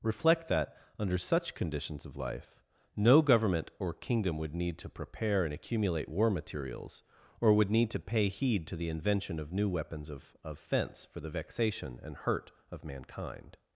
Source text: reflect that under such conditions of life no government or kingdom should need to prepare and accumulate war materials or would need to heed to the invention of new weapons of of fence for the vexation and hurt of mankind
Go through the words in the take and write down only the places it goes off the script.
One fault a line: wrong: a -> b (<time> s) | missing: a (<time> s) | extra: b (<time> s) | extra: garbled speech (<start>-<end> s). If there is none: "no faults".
wrong: should -> would (4.4 s)
extra: pay (8.0 s)